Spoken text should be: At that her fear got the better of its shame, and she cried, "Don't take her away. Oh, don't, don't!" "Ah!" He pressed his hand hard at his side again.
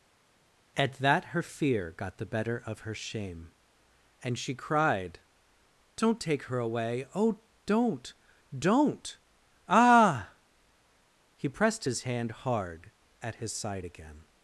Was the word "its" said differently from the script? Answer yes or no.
yes